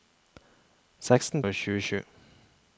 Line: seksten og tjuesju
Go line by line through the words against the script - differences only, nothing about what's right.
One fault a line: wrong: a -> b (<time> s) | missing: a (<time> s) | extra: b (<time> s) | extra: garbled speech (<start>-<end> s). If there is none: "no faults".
no faults